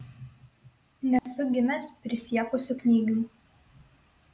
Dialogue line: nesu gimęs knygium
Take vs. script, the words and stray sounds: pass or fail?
fail